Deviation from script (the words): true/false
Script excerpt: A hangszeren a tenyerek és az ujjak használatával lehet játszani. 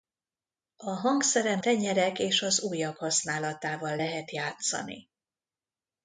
true